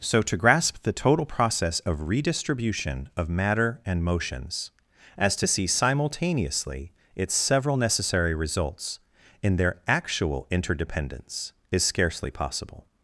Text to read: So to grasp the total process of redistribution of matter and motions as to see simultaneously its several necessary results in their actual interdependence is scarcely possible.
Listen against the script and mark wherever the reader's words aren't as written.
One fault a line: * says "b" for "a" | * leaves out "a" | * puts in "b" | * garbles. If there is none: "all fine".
all fine